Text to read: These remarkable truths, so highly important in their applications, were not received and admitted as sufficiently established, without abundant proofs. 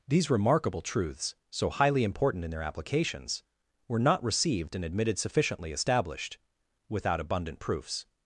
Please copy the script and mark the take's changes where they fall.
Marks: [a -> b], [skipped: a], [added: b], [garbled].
These remarkable truths, so highly important in their applications, were not received and admitted [skipped: as] sufficiently established, without abundant proofs.